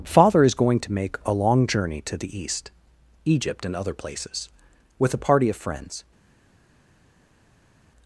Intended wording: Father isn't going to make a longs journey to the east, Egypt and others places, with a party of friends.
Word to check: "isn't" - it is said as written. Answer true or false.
false